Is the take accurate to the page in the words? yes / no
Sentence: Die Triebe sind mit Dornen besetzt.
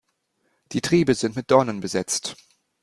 yes